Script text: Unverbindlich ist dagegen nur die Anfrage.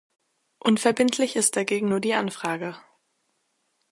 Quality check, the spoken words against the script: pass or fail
pass